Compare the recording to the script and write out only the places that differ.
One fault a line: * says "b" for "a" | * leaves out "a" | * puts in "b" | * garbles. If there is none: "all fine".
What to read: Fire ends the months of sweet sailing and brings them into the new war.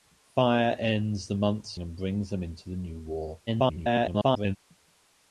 * leaves out "of sweet sailing"
* garbles